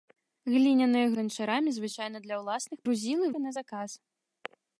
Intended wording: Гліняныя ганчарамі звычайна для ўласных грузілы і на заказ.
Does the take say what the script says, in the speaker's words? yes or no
yes